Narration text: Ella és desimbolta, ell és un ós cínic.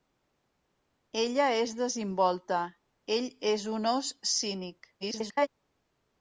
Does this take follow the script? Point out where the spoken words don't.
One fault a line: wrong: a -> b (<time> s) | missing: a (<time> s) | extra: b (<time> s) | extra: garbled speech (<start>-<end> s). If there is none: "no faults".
extra: garbled speech (5.0-5.5 s)